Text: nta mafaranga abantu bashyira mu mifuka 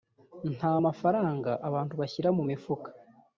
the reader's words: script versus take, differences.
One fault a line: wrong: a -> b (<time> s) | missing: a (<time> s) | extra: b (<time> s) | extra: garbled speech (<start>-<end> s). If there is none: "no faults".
no faults